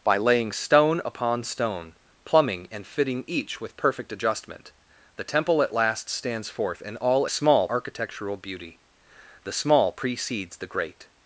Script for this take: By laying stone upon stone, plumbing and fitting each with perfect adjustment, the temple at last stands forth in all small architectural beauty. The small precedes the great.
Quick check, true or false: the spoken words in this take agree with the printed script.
true